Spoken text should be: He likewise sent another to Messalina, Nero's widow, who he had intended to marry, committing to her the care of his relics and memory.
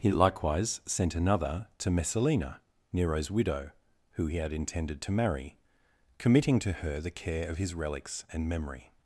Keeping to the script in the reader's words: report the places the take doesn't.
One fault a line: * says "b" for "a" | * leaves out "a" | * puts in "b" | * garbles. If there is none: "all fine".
all fine